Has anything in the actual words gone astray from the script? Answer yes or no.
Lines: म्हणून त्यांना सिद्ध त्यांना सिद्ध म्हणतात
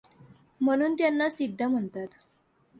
yes